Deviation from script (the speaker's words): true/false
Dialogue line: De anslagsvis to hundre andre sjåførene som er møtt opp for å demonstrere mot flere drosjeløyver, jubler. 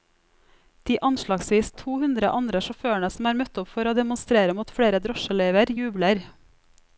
false